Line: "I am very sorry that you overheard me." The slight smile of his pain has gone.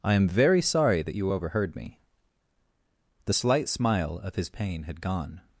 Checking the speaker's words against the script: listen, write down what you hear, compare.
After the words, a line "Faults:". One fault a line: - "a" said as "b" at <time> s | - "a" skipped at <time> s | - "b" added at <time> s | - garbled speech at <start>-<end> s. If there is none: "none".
"I am very sorry that you overheard me." The slight smile of his pain had gone.
Faults:
- "has" said as "had" at 4.8 s